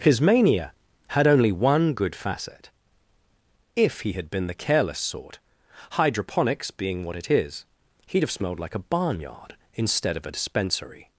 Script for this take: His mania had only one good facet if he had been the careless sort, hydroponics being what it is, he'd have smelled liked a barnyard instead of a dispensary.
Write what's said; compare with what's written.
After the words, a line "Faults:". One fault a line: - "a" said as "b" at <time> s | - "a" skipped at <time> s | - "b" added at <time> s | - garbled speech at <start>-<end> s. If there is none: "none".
His mania had only one good facet if he had been the careless sort, hydroponics being what it is, he'd have smelled like a barnyard instead of a dispensary.
Faults:
- "liked" said as "like" at 8.6 s